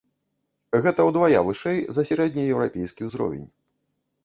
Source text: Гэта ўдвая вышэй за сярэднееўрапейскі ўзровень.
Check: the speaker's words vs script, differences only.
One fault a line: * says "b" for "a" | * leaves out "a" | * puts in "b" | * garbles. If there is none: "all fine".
all fine